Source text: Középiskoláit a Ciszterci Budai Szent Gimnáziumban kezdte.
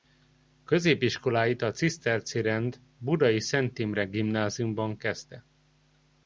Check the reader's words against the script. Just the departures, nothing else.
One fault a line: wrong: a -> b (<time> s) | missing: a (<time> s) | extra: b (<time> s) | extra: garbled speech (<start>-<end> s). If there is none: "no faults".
extra: Rend (2.4 s)
extra: Imre (3.8 s)